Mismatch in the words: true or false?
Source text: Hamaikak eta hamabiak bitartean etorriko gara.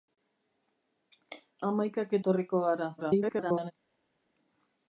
true